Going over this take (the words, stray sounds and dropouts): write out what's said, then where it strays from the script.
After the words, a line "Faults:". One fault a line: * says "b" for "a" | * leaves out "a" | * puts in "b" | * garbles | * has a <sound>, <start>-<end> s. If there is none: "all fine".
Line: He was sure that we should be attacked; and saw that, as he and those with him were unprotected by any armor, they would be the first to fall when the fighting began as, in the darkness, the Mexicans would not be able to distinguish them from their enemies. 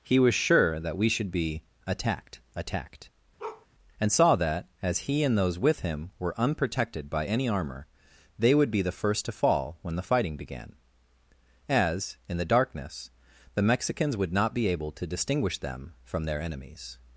He was sure that we should be attacked attacked; and saw that, as he and those with him were unprotected by any armor, they would be the first to fall when the fighting began as, in the darkness, the Mexicans would not be able to distinguish them from their enemies.
Faults:
* puts in "attacked"
* has a bark, 3.4-3.7 s